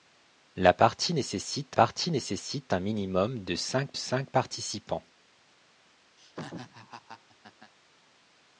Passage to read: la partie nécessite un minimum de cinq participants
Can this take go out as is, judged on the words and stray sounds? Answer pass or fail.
fail